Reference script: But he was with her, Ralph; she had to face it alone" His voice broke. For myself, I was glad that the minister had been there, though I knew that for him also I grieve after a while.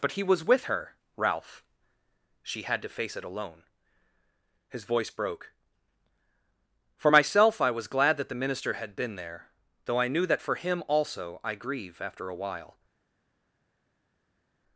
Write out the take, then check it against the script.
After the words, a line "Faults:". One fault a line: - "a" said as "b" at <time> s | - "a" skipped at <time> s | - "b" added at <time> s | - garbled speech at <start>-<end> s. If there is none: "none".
But he was with her, Ralph; she had to face it alone" His voice broke. For myself, I was glad that the minister had been there, though I knew that for him also I grieve after a while.
Faults:
none